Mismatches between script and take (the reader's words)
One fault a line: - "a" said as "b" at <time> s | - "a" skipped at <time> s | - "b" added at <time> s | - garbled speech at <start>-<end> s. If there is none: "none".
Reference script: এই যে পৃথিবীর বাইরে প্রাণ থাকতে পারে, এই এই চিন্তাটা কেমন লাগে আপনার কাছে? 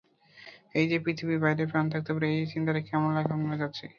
- "এই" skipped at 2.5 s